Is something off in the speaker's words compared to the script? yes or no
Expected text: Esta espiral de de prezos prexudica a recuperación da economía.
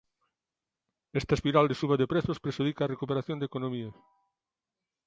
yes